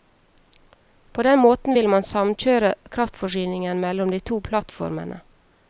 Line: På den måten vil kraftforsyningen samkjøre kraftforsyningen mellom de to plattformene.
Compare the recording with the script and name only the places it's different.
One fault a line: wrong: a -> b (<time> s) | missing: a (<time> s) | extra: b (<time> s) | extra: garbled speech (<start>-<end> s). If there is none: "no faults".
wrong: kraftforsyningen -> man (1.9 s)